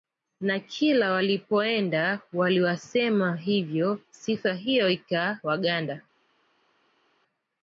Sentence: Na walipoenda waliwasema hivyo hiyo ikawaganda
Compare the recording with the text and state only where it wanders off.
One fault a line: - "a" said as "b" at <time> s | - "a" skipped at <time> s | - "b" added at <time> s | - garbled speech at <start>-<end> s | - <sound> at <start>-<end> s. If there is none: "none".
- "kila" added at 0.6 s
- "sifa" added at 4.1 s